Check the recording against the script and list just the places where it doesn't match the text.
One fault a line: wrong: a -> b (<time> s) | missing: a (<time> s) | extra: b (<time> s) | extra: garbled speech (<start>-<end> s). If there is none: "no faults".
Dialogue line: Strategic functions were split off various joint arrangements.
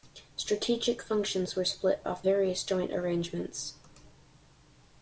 no faults